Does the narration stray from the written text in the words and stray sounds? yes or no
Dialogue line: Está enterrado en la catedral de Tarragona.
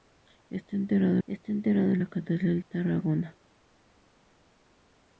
yes